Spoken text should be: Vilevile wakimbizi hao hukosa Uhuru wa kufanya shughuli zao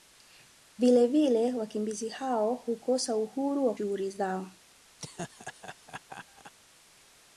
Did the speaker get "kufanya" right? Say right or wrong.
wrong